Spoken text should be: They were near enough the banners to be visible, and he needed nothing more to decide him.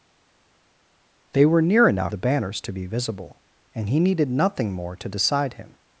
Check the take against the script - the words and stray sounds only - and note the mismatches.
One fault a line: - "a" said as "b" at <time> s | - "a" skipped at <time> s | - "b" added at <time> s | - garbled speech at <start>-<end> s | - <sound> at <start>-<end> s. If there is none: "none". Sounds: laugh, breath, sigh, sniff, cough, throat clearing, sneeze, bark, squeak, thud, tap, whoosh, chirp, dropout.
none